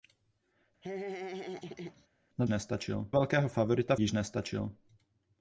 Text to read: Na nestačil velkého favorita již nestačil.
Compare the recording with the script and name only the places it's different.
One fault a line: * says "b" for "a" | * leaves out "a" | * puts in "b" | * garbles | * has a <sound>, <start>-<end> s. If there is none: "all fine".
* has a laugh, 0.8-2.1 s